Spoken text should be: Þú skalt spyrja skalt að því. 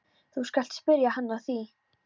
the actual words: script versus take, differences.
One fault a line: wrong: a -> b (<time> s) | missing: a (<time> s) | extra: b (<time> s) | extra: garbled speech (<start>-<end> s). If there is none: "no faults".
wrong: skalt -> hann (1.2 s)